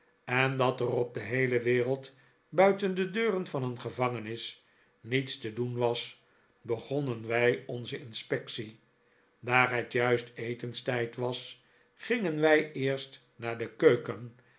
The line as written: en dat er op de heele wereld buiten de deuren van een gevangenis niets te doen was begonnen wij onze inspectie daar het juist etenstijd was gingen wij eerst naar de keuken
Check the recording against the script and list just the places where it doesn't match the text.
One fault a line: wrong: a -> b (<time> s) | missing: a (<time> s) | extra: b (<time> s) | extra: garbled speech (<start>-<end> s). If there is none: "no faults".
no faults